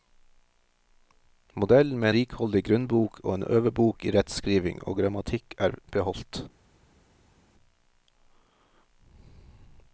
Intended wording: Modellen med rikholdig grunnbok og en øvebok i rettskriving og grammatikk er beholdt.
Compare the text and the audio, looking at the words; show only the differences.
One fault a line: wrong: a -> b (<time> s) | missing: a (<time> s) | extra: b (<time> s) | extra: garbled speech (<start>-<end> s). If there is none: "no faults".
no faults